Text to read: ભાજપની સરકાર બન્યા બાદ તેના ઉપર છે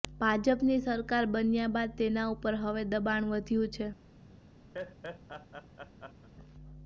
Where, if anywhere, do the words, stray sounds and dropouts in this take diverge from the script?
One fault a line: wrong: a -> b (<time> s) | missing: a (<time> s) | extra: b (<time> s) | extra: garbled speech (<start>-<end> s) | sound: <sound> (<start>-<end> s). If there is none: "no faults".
extra: હવે દબાણ વધ્યું (2.6 s)
sound: laugh (4.7-6.3 s)